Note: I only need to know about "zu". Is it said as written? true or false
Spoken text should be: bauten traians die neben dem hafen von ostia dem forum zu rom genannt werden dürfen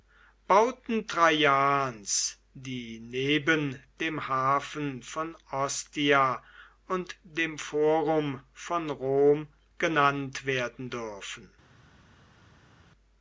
false